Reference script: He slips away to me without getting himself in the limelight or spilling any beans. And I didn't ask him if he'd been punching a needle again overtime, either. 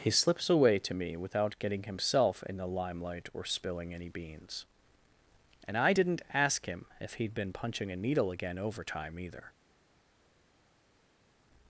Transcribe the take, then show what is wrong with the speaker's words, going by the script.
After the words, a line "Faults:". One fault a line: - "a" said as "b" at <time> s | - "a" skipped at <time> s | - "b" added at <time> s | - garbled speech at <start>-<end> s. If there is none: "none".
He slips away to me without getting himself in the limelight or spilling any beans. And I didn't ask him if he'd been punching a needle again overtime, either.
Faults:
none